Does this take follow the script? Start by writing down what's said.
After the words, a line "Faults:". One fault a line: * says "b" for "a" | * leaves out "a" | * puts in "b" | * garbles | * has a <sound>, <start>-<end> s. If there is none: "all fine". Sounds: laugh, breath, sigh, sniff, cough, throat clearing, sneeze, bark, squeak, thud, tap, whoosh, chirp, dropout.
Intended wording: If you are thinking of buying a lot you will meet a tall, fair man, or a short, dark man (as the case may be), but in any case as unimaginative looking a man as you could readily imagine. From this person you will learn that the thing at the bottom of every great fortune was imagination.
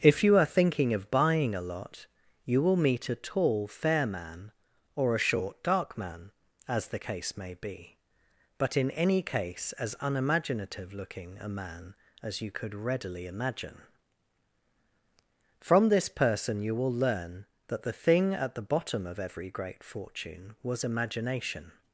If you are thinking of buying a lot you will meet a tall, fair man, or a short, dark man (as the case may be), but in any case as unimaginative looking a man as you could readily imagine. From this person you will learn that the thing at the bottom of every great fortune was imagination.
Faults:
all fine